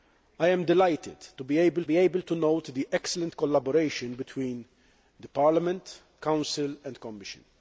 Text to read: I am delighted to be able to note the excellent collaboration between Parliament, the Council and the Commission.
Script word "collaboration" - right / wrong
right